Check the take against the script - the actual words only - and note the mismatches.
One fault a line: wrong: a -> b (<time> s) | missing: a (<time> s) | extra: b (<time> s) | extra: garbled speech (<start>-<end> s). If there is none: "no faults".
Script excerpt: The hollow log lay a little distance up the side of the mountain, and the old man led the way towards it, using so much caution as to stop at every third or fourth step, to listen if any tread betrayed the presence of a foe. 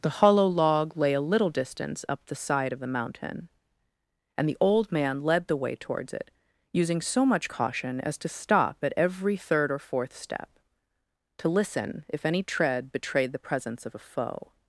no faults